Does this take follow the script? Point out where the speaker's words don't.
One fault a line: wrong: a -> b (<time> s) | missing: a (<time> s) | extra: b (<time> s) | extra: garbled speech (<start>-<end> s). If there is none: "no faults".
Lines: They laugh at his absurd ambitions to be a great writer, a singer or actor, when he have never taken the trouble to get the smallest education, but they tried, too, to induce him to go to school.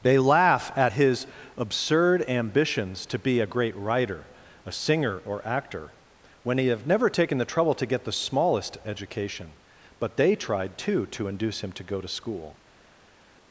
no faults